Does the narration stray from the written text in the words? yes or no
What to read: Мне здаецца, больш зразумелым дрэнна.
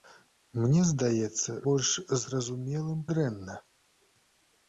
no